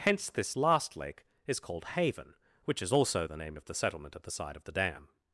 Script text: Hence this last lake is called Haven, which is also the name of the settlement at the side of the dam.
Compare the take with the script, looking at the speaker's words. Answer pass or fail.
pass